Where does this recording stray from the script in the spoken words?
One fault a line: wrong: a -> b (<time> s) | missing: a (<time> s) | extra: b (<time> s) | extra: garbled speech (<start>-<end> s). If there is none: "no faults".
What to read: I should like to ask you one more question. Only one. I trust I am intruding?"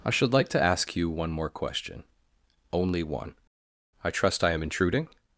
no faults